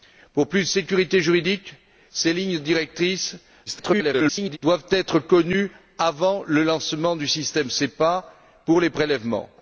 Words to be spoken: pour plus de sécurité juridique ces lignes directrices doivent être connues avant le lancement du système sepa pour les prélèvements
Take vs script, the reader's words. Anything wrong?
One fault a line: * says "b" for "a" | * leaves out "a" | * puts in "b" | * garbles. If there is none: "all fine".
* garbles